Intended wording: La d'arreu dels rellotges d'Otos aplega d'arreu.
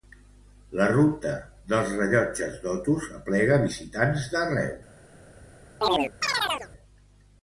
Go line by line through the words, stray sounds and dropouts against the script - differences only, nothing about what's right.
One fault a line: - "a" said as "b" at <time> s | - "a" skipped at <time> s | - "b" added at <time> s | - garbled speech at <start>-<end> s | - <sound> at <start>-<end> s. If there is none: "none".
- "d'arreu" said as "ruta" at 0.9 s
- "visitants" added at 3.6 s
- chirp at 5.8-6.7 s